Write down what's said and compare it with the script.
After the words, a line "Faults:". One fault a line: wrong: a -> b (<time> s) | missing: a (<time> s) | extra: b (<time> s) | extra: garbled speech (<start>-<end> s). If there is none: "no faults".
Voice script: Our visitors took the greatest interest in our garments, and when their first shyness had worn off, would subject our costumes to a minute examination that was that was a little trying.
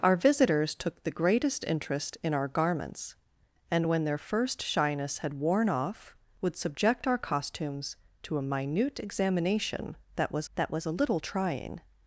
Our visitors took the greatest interest in our garments, and when their first shyness had worn off, would subject our costumes to a minute examination that was that was a little trying.
Faults:
no faults